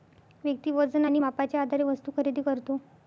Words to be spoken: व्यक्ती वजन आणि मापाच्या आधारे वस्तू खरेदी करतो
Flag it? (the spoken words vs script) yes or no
no